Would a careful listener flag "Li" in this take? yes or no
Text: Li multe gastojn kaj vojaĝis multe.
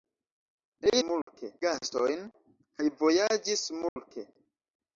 no